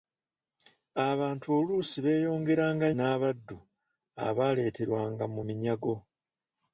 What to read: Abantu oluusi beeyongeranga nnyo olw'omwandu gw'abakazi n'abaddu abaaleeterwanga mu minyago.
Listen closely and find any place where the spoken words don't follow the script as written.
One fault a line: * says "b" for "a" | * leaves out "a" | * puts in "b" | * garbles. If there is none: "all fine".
* leaves out "nnyo olw'omwandu gw'abakazi"